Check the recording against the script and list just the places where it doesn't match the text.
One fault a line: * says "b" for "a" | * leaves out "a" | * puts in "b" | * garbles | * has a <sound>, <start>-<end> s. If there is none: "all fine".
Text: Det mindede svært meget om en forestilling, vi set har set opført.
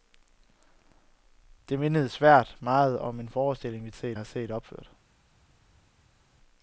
all fine